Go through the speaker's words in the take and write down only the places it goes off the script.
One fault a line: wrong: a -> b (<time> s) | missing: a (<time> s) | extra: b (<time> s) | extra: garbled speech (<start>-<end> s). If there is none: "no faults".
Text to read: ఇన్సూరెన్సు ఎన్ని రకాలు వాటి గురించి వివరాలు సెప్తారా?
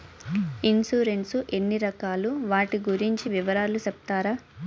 no faults